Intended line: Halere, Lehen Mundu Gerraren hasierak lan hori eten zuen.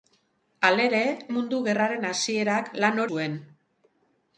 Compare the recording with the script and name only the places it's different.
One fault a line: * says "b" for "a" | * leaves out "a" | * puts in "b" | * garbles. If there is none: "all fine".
* leaves out "Lehen"
* leaves out "hori eten"